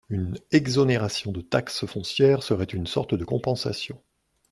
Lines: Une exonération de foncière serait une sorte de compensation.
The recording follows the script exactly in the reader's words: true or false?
false